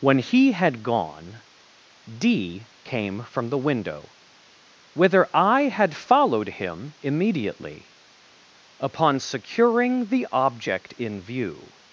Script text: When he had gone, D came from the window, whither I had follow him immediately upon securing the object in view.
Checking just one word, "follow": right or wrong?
wrong